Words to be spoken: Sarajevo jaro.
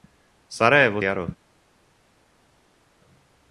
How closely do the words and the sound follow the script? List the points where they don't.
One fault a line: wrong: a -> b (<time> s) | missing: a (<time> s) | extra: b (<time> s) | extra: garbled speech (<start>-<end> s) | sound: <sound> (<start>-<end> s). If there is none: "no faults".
no faults